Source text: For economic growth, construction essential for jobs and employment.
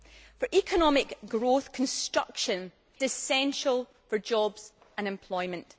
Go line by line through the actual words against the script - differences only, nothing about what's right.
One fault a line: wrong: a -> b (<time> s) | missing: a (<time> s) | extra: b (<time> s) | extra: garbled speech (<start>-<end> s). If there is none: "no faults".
no faults